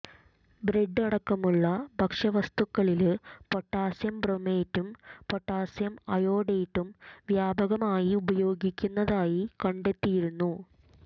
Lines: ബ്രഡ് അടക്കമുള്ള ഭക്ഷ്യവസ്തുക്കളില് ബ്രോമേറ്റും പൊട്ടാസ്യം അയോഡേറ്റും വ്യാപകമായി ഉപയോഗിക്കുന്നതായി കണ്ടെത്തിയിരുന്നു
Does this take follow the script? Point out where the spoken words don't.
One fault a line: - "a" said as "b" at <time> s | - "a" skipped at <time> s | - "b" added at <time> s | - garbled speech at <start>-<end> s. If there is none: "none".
- "പൊട്ടാസ്യം" added at 3.5 s